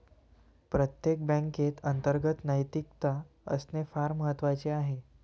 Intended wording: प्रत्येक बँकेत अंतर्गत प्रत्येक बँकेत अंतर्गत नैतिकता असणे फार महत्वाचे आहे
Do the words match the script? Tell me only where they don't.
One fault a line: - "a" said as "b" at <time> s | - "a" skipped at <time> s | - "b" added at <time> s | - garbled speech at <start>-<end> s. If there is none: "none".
- "प्रत्येक बँकेत अंतर्गत" skipped at 2.4 s